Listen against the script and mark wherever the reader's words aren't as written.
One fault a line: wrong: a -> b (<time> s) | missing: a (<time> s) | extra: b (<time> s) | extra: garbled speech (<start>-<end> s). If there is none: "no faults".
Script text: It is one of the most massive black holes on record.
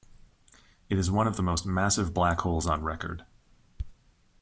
no faults